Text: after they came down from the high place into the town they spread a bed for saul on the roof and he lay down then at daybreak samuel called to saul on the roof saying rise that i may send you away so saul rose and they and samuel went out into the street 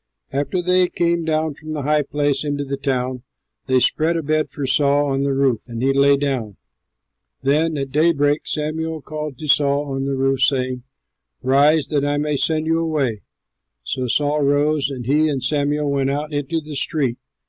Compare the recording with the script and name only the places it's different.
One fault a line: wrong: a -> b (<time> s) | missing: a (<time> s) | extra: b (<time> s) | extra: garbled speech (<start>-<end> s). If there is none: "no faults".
wrong: they -> he (15.1 s)